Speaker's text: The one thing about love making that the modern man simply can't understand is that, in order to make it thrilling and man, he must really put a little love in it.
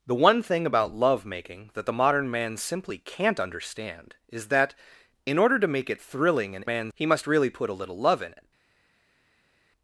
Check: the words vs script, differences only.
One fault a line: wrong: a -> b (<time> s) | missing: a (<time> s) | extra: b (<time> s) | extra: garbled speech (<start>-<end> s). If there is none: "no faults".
no faults